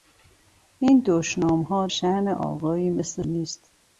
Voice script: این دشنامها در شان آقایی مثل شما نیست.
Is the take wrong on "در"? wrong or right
wrong